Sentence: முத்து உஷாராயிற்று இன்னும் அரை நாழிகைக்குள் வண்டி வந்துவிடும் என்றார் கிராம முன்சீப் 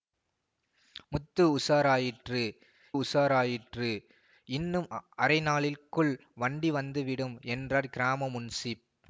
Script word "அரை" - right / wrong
right